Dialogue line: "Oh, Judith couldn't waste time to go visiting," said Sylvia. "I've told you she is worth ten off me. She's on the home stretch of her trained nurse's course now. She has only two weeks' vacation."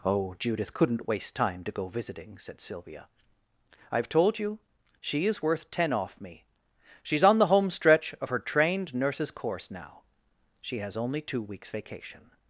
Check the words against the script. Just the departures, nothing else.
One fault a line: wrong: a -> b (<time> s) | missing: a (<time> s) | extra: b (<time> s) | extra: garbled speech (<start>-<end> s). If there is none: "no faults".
no faults